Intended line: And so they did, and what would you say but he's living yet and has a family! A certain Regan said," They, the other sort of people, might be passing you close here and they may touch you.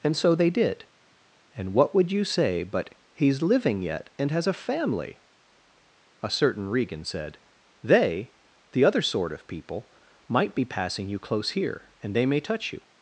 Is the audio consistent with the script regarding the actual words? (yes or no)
yes